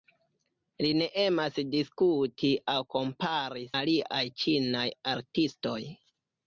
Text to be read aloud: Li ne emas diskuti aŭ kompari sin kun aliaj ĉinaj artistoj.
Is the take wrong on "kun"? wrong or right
wrong